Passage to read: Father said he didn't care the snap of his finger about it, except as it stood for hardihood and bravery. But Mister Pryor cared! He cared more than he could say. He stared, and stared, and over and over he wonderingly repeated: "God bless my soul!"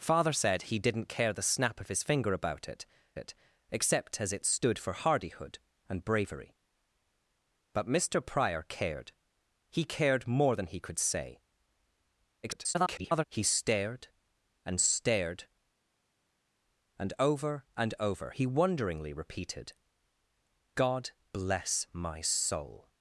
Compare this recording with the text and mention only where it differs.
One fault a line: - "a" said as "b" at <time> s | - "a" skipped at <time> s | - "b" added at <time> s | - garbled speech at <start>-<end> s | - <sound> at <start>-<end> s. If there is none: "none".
- "it" added at 3.2 s
- garbled speech at 12.4-13.2 s